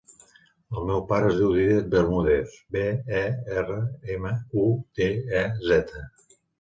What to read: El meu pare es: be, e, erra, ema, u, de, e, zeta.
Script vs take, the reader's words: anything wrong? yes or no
yes